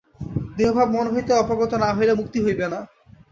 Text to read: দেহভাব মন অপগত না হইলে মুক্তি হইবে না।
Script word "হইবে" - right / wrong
right